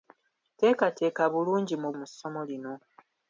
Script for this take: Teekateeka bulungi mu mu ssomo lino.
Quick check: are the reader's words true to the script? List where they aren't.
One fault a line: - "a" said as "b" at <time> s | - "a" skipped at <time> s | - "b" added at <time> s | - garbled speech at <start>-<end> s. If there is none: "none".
none